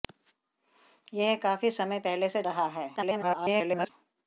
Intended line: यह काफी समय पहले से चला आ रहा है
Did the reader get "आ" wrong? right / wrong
wrong